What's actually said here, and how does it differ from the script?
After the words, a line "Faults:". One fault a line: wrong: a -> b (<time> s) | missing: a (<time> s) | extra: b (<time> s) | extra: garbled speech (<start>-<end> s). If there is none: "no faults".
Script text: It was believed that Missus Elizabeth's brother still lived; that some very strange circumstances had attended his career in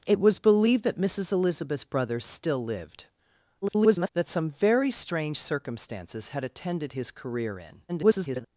It was believed that Missus Elizabeth's brother still lived; [garbled] that some very strange circumstances had attended his career in [garbled]
Faults:
extra: garbled speech (3.6-4.1 s)
extra: garbled speech (7.9-8.5 s)